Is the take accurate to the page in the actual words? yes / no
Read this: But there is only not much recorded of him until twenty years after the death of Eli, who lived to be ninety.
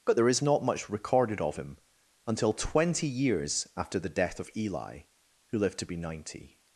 no